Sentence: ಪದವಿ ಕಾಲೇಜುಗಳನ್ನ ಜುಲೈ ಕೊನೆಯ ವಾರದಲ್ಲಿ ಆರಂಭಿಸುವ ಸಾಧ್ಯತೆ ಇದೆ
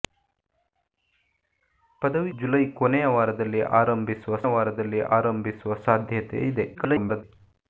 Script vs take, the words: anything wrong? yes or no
yes